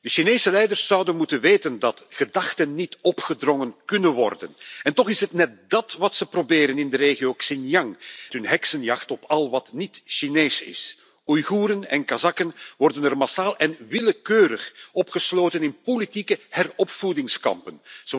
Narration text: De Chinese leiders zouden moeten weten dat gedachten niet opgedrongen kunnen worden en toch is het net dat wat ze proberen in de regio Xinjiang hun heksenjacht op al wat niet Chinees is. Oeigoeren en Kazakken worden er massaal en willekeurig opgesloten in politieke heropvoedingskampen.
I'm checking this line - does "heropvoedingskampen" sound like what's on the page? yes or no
yes